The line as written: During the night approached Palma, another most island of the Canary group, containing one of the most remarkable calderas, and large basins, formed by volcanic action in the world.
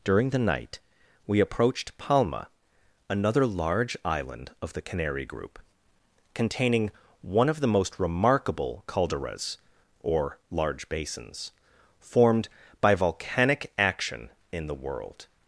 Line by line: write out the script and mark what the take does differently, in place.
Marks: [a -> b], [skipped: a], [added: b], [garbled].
During the night [added: we] approached Palma, another [most -> large] island of the Canary group, containing one of the most remarkable calderas, [and -> or] large basins, formed by volcanic action in the world.